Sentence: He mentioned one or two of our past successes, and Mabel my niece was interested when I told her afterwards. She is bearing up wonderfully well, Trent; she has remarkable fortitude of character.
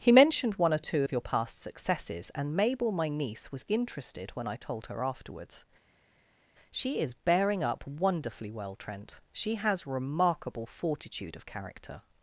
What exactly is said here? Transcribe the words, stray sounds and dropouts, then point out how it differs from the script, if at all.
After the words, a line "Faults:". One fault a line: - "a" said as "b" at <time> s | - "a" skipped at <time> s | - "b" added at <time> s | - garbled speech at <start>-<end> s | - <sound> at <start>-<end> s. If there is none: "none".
He mentioned one or two of your past successes, and Mabel my niece was interested when I told her afterwards. She is bearing up wonderfully well, Trent; she has remarkable fortitude of character.
Faults:
- "our" said as "your" at 1.1 s